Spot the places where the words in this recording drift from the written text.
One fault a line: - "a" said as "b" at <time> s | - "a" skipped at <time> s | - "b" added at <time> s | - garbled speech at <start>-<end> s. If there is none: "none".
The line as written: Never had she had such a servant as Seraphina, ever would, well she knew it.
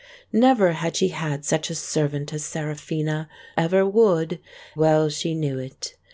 none